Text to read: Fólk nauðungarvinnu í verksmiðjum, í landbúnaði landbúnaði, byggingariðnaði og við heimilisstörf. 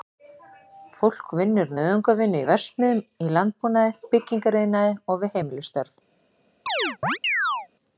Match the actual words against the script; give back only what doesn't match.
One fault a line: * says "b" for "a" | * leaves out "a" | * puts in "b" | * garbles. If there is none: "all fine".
* puts in "vinnur"
* leaves out "landbúnaði"